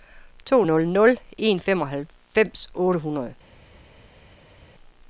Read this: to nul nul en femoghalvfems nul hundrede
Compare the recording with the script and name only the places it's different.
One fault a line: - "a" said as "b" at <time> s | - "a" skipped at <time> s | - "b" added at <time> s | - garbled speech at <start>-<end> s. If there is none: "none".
- "nul" said as "otte" at 2.7 s